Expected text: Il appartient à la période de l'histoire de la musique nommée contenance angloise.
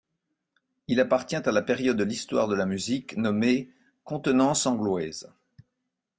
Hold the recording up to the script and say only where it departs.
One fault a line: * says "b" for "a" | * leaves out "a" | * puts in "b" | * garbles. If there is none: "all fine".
all fine